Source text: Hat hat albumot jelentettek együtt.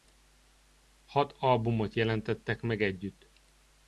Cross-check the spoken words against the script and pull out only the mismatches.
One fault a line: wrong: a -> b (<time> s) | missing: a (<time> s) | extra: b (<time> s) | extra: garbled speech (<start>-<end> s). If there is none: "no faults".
missing: hat (1.4 s)
extra: meg (2.6 s)